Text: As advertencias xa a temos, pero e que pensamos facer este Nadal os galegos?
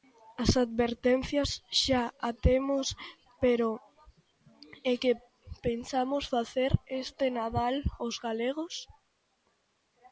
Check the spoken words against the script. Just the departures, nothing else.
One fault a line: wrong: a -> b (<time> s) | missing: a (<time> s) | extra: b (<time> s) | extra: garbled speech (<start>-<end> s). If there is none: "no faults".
no faults